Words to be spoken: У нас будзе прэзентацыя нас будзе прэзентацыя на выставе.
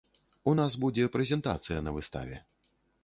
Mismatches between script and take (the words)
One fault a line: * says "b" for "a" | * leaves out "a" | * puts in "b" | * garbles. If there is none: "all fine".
* leaves out "нас будзе прэзентацыя"